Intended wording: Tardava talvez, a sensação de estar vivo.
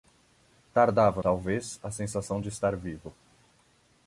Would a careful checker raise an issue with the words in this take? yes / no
no